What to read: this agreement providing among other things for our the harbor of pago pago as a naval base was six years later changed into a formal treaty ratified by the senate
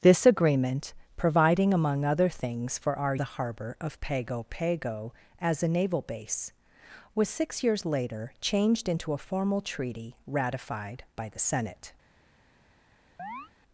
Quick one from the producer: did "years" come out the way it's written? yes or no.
yes